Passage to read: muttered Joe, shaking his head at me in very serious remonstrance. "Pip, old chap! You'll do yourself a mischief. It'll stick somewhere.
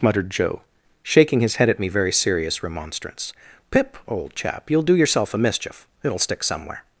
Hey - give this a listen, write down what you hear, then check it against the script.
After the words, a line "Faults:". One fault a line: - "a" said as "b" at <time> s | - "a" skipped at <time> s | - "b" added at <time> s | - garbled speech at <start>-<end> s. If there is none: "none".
muttered Joe, shaking his head at me very serious remonstrance. "Pip, old chap! You'll do yourself a mischief. It'll stick somewhere.
Faults:
- "in" skipped at 1.9 s